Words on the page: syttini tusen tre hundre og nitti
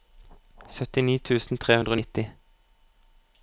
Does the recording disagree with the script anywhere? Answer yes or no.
no